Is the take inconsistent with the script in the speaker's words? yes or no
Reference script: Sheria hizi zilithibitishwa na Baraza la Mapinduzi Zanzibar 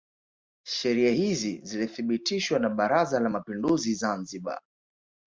no